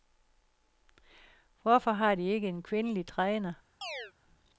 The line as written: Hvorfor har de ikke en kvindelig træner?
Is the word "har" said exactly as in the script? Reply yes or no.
yes